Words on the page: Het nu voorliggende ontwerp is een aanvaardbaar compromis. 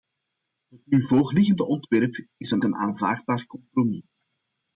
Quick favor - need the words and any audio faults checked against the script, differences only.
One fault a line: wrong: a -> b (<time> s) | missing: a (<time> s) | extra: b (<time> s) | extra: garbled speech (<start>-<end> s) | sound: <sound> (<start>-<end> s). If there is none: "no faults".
extra: een (2.6 s)